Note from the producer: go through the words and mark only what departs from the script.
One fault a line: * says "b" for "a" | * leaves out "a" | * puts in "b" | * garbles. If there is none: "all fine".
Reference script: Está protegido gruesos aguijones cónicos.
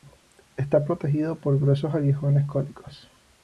* puts in "por"